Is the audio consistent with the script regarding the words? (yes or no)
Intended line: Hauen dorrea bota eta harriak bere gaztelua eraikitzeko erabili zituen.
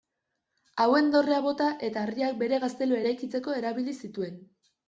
yes